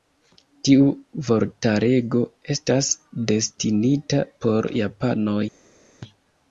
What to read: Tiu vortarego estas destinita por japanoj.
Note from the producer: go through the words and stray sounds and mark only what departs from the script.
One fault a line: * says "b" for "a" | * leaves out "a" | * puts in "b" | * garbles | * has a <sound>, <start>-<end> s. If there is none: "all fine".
all fine